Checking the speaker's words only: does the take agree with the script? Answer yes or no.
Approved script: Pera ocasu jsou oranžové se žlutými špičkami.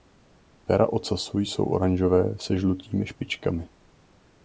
yes